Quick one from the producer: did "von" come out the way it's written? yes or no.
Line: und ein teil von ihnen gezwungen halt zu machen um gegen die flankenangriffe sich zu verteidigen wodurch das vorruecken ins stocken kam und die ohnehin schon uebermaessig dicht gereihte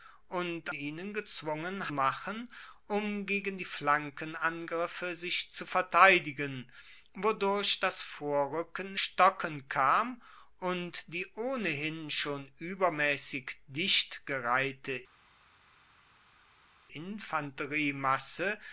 no